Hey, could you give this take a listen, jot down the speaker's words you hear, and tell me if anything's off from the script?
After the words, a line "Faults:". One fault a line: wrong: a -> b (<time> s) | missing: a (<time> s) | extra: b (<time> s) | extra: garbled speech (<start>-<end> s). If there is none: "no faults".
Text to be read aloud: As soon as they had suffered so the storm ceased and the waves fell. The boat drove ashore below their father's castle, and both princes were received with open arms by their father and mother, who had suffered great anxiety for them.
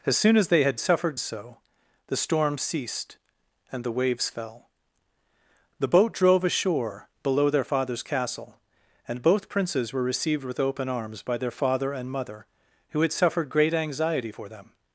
As soon as they had suffered so the storm ceased and the waves fell. The boat drove ashore below their father's castle, and both princes were received with open arms by their father and mother, who had suffered great anxiety for them.
Faults:
no faults